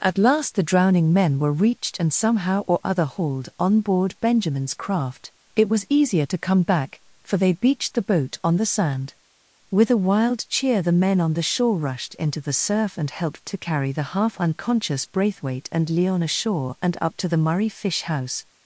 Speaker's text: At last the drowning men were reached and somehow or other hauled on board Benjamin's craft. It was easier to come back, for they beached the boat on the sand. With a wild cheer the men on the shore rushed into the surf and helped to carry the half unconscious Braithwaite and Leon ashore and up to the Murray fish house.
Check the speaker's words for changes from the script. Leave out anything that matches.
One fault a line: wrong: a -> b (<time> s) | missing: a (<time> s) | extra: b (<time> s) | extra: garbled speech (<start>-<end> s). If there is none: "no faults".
no faults